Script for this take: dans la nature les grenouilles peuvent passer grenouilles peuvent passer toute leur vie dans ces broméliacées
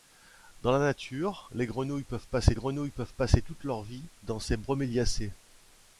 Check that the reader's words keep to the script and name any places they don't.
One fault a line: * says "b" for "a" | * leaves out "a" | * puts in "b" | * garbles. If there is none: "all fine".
all fine